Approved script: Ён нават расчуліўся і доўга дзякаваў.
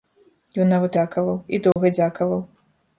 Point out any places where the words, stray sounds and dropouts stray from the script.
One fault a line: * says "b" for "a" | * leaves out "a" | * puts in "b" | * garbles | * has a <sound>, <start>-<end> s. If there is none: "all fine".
* says "дзякаваў" for "расчуліўся"
* has a dropout, 1.7-1.8 s